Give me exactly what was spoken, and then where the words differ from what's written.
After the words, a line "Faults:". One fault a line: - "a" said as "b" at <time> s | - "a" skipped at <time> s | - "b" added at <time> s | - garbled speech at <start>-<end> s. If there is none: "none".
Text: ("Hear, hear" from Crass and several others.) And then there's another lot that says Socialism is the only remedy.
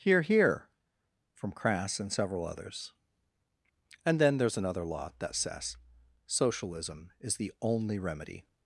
("Hear, hear" from Crass and several others.) And then there's another lot that says Socialism is the only remedy.
Faults:
none